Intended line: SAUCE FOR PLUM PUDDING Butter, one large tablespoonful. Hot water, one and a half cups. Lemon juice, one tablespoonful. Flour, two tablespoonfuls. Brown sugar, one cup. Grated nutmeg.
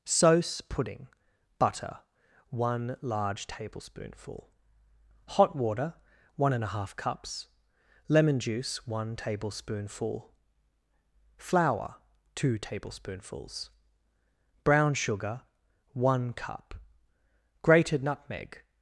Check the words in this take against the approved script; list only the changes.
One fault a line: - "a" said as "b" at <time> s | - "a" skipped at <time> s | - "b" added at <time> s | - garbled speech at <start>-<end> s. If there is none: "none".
- "FOR PLUM" skipped at 0.6 s